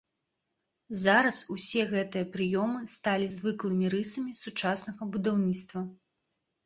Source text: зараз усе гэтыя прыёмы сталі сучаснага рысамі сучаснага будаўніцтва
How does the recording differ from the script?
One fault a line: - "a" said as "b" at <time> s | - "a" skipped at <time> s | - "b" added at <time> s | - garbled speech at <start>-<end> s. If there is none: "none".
- "сучаснага" said as "звыклымі" at 3.3 s